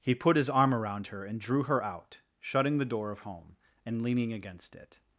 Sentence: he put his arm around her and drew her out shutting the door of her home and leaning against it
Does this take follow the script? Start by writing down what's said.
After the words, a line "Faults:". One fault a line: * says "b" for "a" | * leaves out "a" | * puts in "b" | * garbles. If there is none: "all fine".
he put his arm around her and drew her out shutting the door of home and leaning against it
Faults:
* leaves out "her"